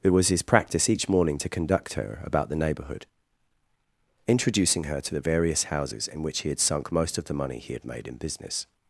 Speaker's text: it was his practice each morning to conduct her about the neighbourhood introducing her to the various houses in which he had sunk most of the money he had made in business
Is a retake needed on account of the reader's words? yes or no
no